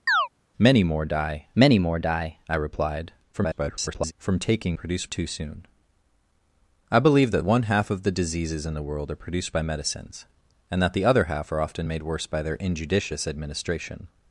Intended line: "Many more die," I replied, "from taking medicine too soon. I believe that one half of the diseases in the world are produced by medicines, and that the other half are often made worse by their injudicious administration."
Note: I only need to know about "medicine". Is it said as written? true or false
false